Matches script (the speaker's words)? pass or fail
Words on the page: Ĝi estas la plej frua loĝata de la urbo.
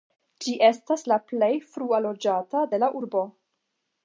pass